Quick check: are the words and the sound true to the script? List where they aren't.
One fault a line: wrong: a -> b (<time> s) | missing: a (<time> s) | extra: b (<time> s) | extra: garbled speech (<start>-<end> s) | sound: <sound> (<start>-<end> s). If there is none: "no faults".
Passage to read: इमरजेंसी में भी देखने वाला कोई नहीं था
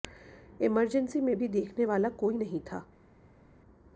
no faults